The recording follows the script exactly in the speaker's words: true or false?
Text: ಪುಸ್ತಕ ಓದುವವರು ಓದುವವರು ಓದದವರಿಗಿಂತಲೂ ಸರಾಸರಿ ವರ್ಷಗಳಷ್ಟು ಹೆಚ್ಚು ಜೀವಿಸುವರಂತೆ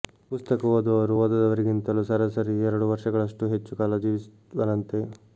false